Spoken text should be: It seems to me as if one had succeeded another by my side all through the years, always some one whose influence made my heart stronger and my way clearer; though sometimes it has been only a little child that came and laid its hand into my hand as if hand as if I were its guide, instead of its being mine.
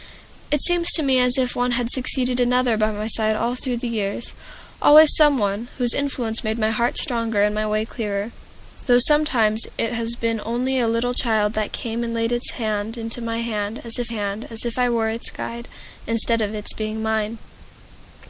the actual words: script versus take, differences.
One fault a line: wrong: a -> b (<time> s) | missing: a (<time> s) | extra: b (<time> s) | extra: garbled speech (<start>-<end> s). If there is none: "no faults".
no faults